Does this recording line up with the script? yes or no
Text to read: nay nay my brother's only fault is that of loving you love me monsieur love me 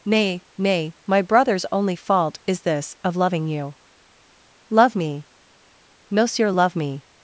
no